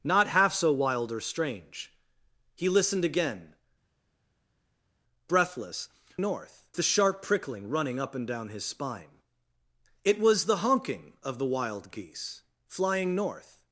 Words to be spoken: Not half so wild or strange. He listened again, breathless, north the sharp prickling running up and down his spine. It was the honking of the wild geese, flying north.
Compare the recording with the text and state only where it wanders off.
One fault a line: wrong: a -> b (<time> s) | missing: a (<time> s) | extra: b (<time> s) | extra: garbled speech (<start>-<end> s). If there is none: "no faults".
no faults